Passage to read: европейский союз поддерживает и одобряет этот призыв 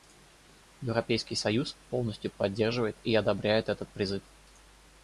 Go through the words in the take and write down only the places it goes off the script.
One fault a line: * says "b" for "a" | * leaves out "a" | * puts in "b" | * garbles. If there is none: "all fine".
* puts in "полностью"